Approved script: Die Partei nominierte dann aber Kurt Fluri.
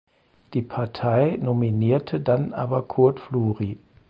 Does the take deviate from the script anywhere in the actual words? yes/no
no